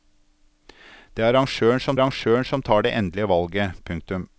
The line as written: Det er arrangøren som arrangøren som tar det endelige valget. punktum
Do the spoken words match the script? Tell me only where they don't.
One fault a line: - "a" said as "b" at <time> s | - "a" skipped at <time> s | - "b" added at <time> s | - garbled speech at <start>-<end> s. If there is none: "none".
none